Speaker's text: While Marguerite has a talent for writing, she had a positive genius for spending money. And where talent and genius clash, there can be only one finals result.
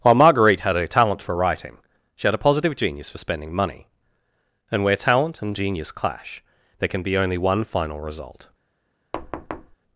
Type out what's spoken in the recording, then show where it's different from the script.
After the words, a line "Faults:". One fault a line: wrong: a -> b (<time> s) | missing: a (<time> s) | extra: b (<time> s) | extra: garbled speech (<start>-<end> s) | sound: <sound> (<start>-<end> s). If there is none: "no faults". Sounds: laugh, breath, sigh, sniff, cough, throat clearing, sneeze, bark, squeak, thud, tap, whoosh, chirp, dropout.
While Marguerite had a talent for writing, she had a positive genius for spending money. And where talent and genius clash, there can be only one final result.
Faults:
wrong: has -> had (0.6 s)
wrong: finals -> final (7.6 s)
sound: thud (9.1-9.8 s)